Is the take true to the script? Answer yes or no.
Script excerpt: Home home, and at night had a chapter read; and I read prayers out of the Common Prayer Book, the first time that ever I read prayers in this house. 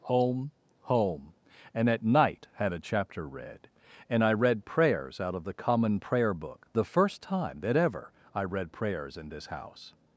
yes